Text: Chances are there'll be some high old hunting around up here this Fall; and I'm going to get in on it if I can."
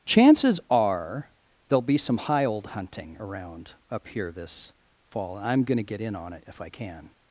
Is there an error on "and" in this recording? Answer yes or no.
yes